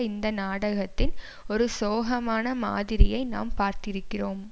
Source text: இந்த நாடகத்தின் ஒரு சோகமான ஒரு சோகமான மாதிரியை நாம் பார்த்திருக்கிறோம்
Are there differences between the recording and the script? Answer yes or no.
yes